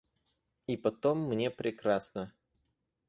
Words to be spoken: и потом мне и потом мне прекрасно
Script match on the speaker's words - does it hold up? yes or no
no